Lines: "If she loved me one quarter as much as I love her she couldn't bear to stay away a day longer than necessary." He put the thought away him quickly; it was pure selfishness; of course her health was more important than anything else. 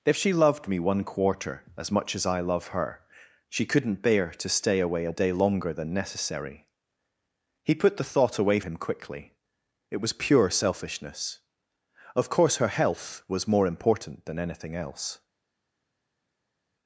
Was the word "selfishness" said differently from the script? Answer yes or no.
no